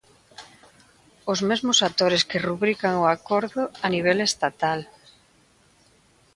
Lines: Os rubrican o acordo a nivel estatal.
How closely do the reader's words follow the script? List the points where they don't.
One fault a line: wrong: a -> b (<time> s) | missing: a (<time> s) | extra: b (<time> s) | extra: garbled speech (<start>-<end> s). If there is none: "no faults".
extra: mesmos actores que (1.5 s)